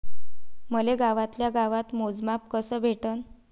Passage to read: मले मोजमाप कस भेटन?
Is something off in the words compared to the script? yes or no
yes